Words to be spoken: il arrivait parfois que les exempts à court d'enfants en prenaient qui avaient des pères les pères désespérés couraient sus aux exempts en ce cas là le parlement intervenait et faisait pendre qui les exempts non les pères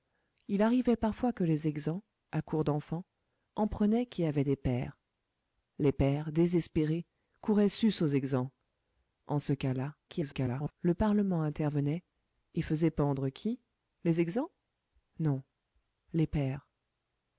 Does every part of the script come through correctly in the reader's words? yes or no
no